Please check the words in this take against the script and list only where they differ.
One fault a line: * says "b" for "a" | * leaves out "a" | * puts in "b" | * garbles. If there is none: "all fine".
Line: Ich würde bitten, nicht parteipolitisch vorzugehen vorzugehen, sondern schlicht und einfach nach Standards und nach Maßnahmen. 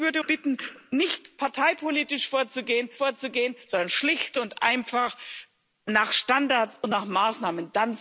all fine